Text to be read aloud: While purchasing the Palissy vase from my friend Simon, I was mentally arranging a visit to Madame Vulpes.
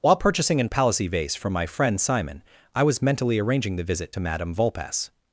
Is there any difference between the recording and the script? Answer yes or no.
yes